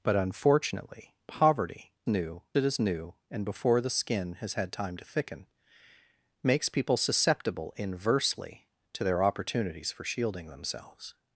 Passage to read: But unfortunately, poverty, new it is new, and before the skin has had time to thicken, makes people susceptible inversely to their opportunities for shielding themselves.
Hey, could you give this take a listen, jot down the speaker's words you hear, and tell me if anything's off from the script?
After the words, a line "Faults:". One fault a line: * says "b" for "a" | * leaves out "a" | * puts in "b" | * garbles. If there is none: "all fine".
But unfortunately, poverty, new it is new, and before the skin has had time to thicken, makes people susceptible inversely to their opportunities for shielding themselves.
Faults:
all fine